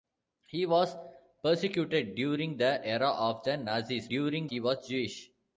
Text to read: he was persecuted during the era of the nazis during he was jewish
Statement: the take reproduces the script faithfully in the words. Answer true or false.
true